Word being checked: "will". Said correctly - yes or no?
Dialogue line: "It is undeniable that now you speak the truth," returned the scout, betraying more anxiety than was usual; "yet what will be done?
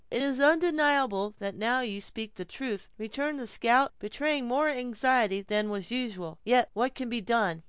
no